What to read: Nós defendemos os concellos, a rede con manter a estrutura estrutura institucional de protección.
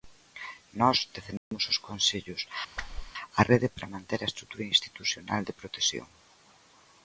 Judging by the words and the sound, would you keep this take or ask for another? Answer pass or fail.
fail